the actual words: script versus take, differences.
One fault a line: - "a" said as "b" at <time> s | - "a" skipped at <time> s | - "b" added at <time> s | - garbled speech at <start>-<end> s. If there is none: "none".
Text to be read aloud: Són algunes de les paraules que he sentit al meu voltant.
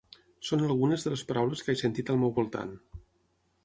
none